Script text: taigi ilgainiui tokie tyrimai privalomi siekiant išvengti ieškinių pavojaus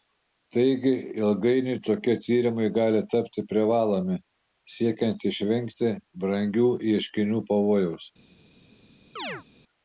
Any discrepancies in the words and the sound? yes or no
yes